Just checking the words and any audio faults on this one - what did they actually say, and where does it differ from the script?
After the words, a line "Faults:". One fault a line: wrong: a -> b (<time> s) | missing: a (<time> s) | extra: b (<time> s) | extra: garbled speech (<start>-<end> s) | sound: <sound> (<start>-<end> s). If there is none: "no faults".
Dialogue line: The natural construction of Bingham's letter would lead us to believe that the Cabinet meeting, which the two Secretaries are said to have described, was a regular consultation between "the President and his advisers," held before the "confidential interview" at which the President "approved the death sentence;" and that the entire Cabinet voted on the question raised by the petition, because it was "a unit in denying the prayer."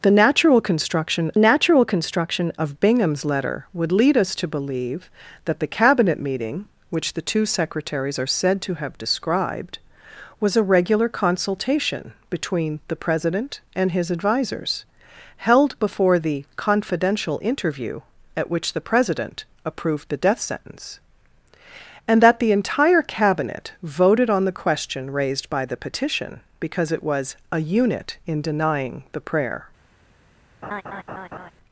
The natural construction natural construction of Bingham's letter would lead us to believe that the Cabinet meeting, which the two Secretaries are said to have described, was a regular consultation between "the President and his advisers," held before the "confidential interview" at which the President "approved the death sentence;" and that the entire Cabinet voted on the question raised by the petition, because it was "a unit in denying the prayer."
Faults:
extra: natural construction (1.4 s)
sound: laugh (30.6-31.5 s)